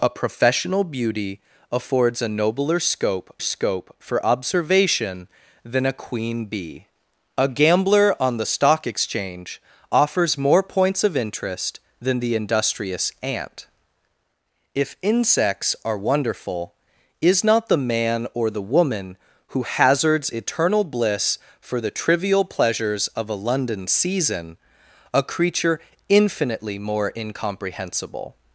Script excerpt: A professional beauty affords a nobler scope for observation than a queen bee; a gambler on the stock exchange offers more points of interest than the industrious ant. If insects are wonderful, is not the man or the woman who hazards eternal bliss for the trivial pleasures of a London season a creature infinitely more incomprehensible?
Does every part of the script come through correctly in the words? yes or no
no